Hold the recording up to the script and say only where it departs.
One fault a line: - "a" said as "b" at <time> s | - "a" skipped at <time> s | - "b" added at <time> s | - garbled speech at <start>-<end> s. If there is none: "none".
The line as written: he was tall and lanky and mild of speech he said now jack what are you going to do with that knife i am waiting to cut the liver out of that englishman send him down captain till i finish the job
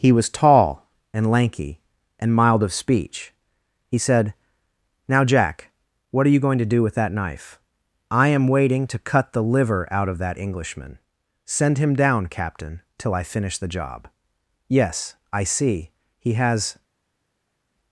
- "yes i see he has" added at 14.7 s